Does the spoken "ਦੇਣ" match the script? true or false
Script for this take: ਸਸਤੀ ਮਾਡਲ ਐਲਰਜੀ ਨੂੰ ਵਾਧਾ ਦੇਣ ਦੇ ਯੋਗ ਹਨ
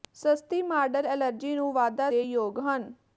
false